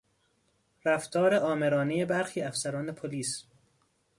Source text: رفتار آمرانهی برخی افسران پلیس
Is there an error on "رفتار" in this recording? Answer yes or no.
no